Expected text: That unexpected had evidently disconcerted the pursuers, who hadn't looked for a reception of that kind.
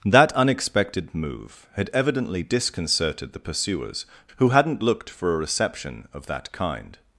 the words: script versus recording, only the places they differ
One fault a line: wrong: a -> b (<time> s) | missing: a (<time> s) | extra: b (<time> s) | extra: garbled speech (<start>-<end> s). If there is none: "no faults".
extra: move (1.1 s)